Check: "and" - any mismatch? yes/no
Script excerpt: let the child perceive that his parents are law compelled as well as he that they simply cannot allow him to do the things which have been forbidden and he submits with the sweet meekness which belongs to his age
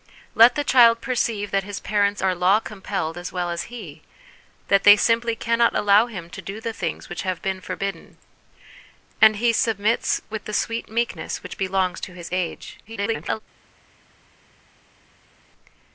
no